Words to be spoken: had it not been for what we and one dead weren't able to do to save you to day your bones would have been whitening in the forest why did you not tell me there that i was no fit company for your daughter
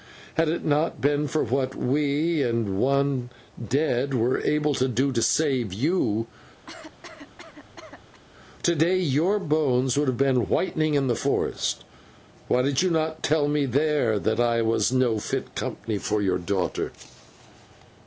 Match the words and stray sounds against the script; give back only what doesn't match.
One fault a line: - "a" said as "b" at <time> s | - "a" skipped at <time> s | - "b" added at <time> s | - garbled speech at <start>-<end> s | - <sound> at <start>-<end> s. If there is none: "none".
- "weren't" said as "were" at 4.2 s
- cough at 6.7-8.2 s